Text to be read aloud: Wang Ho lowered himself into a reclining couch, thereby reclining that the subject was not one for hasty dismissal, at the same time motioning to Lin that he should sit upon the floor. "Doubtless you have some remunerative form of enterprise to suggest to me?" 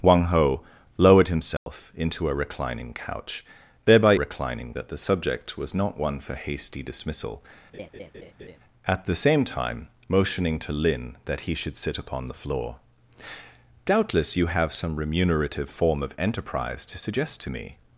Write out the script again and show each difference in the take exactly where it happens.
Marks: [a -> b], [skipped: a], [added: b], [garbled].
Wang Ho lowered himself into a reclining couch, thereby reclining that the subject was not one for hasty dismissal, at the same time motioning to Lin that he should sit upon the floor. "Doubtless you have some remunerative form of enterprise to suggest to me?"